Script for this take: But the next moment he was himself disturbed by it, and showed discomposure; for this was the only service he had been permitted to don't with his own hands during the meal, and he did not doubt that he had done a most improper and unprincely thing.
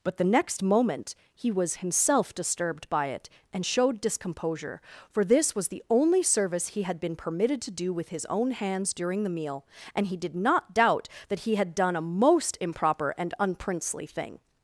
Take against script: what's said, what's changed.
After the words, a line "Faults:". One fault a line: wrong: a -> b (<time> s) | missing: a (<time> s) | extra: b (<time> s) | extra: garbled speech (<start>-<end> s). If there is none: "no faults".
But the next moment he was himself disturbed by it, and showed discomposure; for this was the only service he had been permitted to do with his own hands during the meal, and he did not doubt that he had done a most improper and unprincely thing.
Faults:
wrong: don't -> do (7.7 s)